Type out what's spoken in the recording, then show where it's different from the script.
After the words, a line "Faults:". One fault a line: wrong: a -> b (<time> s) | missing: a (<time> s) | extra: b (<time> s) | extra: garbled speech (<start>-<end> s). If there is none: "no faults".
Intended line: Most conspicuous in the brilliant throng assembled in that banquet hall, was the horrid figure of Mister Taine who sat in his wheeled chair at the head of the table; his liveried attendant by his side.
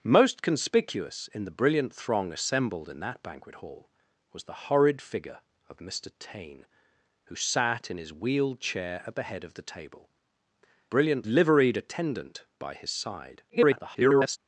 Most conspicuous in the brilliant throng assembled in that banquet hall, was the horrid figure of Mister Taine who sat in his wheeled chair at the head of the table; brilliant liveried attendant by his side. [garbled]
Faults:
wrong: his -> brilliant (10.9 s)
extra: garbled speech (13.5-14.4 s)